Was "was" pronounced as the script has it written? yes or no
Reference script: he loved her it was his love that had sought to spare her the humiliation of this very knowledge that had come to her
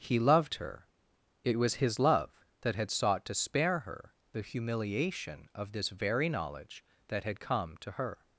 yes